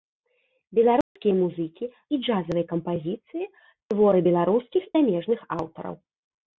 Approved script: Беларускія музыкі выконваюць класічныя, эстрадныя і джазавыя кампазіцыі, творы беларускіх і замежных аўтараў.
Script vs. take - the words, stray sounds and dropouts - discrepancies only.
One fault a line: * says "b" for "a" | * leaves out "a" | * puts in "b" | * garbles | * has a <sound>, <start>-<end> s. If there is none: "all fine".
* has a dropout, 1.0-1.2 s
* leaves out "выконваюць класічныя эстрадныя"
* leaves out "і"